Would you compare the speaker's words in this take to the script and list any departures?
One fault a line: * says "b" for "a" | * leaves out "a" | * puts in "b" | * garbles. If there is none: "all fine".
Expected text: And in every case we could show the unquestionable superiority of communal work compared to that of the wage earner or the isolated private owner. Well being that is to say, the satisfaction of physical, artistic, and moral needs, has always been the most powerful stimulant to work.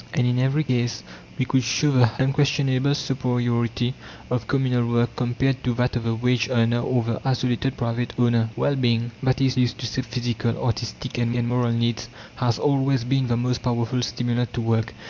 * puts in "is"
* leaves out "the satisfaction"
* puts in "and"